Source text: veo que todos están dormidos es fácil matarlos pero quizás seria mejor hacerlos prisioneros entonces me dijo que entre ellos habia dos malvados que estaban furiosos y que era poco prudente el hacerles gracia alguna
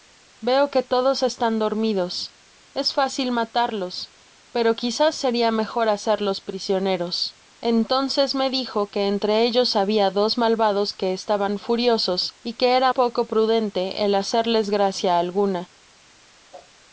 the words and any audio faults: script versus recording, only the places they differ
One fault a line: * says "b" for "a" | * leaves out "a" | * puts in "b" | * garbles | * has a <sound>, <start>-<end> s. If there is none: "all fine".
* has a whoosh, 16.5-16.7 s